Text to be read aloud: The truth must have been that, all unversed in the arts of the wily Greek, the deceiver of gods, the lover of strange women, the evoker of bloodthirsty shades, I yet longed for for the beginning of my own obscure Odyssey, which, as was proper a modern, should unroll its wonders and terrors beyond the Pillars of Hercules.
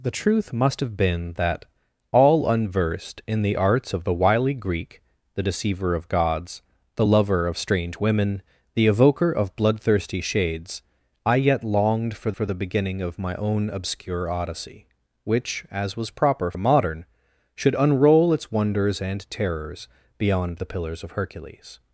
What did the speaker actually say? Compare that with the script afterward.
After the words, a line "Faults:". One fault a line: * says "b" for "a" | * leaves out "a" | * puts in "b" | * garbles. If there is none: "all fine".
The truth must have been that, all unversed in the arts of the wily Greek, the deceiver of gods, the lover of strange women, the evoker of bloodthirsty shades, I yet longed for for the beginning of my own obscure Odyssey, which, as was proper a modern, should unroll its wonders and terrors beyond the Pillars of Hercules.
Faults:
all fine